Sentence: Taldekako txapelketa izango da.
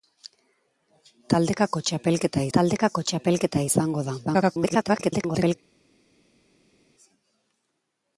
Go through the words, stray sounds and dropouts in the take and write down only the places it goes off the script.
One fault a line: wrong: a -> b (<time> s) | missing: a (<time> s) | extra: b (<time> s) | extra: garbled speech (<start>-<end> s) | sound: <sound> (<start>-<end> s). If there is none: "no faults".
extra: taldekako txapelketa (2.6 s)
extra: garbled speech (4.3-5.6 s)